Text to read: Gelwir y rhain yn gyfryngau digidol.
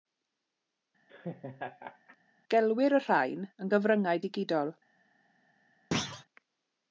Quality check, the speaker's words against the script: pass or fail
pass